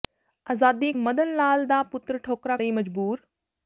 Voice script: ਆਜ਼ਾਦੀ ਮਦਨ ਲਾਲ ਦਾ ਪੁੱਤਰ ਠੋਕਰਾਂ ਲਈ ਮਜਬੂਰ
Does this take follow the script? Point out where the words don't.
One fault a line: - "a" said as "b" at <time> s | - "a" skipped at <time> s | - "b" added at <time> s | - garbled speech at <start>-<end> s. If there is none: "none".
none